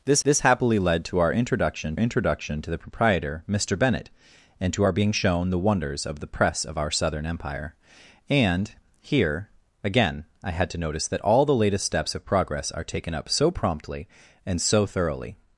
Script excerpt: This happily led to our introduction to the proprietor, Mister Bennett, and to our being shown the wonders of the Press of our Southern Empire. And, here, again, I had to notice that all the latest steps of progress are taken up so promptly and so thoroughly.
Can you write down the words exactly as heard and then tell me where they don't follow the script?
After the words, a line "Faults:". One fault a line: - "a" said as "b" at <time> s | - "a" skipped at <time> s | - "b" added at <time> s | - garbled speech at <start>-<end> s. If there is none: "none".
This this happily led to our introduction introduction to the proprietor, Mister Bennett, and to our being shown the wonders of the Press of our Southern Empire. And, here, again, I had to notice that all the latest steps of progress are taken up so promptly and so thoroughly.
Faults:
- "this" added at 0.2 s
- "introduction" added at 2.0 s